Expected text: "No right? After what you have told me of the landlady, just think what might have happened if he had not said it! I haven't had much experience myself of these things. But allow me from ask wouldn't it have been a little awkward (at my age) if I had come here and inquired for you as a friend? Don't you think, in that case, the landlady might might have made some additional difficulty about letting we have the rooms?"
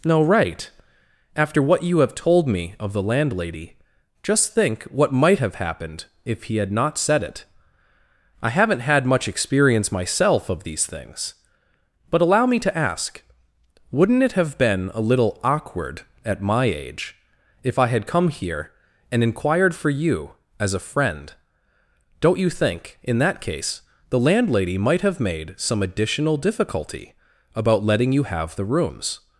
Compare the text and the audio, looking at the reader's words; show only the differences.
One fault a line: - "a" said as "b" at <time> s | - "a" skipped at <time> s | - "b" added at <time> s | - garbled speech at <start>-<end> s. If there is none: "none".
- "from" said as "to" at 12.6 s
- "might" skipped at 25.0 s
- "we" said as "you" at 28.1 s